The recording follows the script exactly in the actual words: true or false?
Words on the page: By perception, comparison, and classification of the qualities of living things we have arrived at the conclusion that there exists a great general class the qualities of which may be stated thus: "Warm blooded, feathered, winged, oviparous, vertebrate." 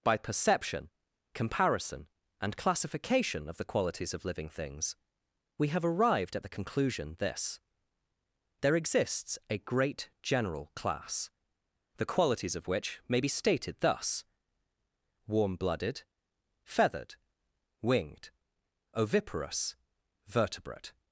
false